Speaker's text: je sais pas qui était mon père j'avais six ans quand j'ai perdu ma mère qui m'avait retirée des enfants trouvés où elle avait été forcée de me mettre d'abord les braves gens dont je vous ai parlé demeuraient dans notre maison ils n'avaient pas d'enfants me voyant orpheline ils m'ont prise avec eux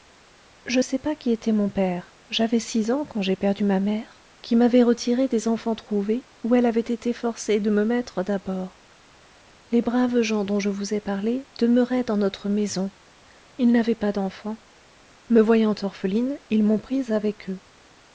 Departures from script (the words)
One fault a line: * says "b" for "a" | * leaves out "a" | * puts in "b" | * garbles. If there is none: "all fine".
all fine